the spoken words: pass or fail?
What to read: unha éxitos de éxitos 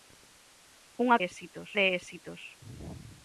pass